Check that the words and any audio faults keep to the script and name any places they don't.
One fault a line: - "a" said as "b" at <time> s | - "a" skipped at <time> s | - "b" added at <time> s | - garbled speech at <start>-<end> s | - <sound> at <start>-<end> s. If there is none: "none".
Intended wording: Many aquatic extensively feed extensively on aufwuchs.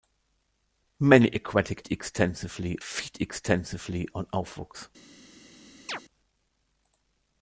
- chirp at 5.9-6.0 s